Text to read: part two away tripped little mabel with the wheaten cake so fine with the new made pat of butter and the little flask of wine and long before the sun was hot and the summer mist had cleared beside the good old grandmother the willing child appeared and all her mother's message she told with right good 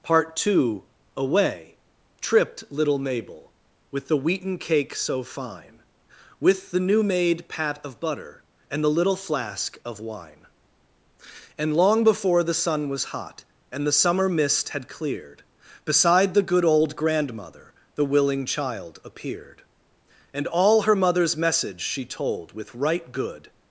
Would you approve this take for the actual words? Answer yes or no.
yes